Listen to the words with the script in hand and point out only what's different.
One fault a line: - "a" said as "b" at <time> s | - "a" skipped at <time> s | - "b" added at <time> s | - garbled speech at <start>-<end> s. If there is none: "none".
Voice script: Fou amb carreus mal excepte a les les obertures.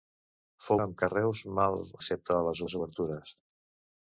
none